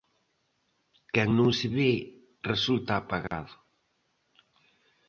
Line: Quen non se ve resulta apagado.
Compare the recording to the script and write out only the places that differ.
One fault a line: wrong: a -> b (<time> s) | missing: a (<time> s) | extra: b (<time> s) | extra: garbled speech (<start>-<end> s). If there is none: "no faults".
no faults